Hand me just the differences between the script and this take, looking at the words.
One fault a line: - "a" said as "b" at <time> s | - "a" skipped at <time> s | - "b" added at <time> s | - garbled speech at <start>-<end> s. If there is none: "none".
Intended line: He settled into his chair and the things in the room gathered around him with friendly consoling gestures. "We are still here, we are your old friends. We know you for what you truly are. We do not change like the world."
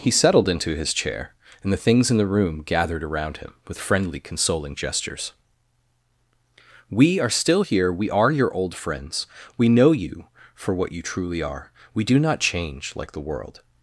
none